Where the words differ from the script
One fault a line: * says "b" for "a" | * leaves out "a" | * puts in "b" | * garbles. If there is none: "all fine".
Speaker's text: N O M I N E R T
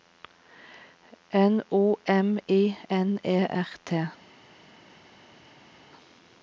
all fine